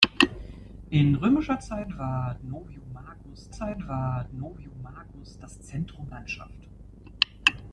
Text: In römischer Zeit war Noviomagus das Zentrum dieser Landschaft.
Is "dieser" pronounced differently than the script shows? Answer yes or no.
yes